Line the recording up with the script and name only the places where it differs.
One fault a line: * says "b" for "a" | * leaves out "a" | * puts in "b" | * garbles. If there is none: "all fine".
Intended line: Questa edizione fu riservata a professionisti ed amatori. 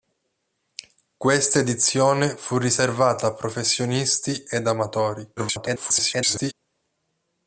* garbles